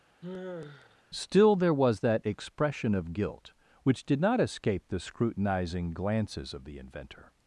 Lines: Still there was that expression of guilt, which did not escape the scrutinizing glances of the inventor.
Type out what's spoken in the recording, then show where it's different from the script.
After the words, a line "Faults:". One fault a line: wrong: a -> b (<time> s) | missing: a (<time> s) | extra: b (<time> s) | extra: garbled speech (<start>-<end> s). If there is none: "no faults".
Still there was that expression of guilt, which did not escape the scrutinizing glances of the inventor.
Faults:
no faults